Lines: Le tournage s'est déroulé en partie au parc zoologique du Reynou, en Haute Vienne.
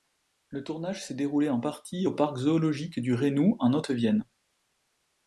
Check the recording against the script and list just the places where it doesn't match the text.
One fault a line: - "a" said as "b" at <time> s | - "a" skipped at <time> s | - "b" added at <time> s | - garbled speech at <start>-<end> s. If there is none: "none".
none